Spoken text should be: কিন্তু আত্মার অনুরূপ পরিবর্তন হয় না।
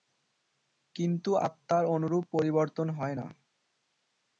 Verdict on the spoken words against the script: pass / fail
pass